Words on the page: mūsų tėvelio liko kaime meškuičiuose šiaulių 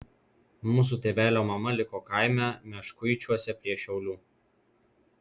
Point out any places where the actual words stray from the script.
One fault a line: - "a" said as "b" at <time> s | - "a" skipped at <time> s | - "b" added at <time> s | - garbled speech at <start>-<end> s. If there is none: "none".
- "mama" added at 1.5 s
- "prie" added at 3.6 s